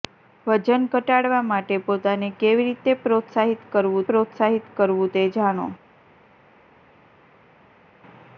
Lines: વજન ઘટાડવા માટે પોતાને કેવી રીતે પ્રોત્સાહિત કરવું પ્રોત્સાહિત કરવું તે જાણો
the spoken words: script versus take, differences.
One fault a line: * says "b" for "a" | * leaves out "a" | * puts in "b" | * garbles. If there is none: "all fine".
all fine